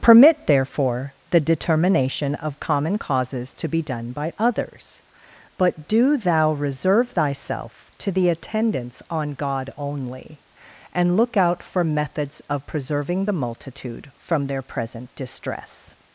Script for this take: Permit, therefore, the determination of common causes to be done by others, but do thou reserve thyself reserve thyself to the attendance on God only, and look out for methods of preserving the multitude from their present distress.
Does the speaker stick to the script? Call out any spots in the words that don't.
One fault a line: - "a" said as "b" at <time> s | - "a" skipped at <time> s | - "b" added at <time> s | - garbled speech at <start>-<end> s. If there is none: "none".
- "reserve thyself" skipped at 7.9 s